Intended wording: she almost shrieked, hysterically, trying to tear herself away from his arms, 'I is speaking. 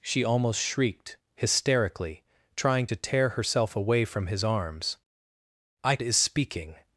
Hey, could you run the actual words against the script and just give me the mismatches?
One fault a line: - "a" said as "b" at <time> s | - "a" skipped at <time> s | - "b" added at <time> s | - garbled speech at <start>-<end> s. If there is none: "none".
none